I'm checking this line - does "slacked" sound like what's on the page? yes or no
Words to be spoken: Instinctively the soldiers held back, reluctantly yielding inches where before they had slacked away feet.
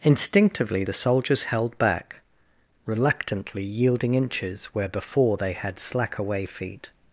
no